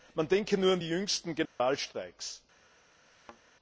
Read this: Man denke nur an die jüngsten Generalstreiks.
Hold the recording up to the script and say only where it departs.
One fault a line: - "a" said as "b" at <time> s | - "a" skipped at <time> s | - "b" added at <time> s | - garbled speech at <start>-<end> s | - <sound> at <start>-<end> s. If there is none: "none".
- dropout at 1.5-1.6 s
- thud at 3.1-3.4 s